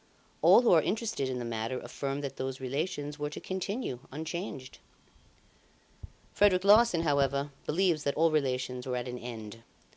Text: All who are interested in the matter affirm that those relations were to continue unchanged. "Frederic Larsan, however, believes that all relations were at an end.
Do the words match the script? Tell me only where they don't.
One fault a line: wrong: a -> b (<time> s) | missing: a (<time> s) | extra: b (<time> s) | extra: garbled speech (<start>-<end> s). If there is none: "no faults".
no faults